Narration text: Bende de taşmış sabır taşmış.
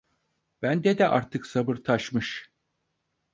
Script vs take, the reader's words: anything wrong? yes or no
yes